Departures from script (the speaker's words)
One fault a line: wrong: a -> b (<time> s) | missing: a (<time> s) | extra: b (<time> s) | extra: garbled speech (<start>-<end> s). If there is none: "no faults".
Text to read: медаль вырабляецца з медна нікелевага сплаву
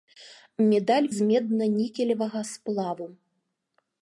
missing: вырабляецца (1.1 s)